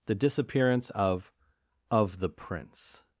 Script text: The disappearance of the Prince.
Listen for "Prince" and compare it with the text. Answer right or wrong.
right